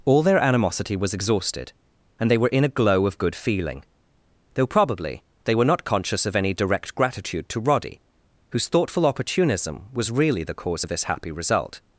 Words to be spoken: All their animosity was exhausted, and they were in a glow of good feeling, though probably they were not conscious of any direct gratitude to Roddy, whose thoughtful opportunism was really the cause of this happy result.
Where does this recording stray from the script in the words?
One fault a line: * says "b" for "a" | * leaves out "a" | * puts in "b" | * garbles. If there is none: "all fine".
all fine